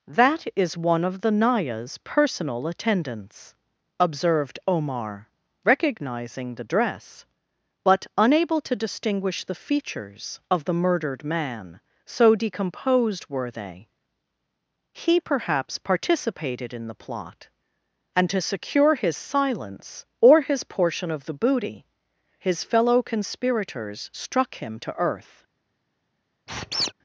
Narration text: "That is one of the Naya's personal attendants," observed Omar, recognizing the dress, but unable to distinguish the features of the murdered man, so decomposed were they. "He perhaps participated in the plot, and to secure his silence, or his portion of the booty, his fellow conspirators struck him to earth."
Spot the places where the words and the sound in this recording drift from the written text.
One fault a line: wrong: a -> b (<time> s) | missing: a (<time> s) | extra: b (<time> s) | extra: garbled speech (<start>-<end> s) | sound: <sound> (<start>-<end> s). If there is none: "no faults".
sound: squeak (26.5-26.9 s)